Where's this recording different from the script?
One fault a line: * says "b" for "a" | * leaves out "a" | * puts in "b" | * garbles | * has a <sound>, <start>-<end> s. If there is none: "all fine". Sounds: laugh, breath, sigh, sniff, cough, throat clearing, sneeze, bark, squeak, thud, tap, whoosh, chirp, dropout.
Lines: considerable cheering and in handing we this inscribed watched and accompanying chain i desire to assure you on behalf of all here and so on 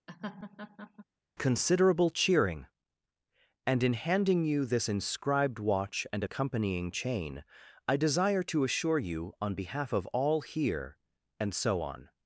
* has a laugh, 0.1-1.1 s
* says "you" for "we"
* says "watch" for "watched"